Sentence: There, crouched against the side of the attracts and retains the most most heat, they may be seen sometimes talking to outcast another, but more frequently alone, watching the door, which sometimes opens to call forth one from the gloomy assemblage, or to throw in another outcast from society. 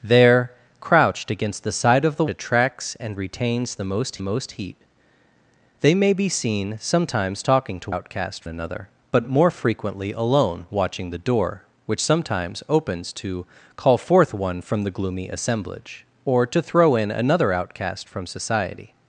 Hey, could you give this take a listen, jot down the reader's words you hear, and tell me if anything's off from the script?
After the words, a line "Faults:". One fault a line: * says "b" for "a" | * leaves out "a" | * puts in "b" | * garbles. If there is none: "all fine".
There, crouched against the side of the attracts and retains the most most heat, they may be seen sometimes talking to outcast another, but more frequently alone, watching the door, which sometimes opens to call forth one from the gloomy assemblage, or to throw in another outcast from society.
Faults:
all fine